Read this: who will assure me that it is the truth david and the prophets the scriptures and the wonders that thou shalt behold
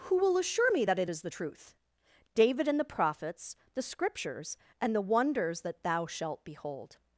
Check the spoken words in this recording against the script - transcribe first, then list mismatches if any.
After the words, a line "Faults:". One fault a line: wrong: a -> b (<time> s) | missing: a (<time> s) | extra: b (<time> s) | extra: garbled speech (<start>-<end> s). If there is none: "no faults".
who will assure me that it is the truth david and the prophets the scriptures and the wonders that thou shalt behold
Faults:
no faults